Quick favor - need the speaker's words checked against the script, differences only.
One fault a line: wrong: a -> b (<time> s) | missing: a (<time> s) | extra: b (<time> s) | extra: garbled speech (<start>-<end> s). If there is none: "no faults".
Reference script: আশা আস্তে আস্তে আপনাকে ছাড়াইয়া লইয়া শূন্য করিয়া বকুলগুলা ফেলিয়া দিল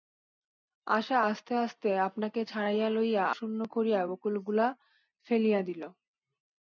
no faults